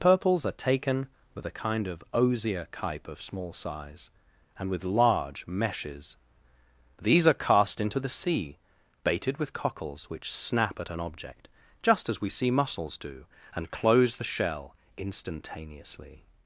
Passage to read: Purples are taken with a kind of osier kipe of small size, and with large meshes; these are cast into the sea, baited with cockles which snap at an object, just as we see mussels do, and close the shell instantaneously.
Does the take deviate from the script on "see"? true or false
false